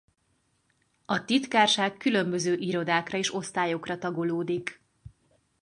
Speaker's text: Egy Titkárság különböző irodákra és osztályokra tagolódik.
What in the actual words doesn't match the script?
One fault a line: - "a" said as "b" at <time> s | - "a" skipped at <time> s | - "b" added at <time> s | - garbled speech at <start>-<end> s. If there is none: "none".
- "Egy" said as "A" at 1.1 s